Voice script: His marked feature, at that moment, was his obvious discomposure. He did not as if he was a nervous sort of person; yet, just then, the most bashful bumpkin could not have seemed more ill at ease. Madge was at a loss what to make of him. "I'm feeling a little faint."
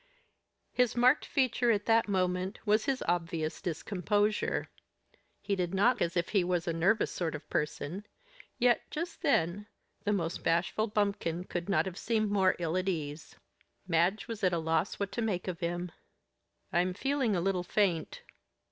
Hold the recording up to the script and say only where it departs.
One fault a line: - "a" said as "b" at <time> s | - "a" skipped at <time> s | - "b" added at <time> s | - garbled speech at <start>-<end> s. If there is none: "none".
none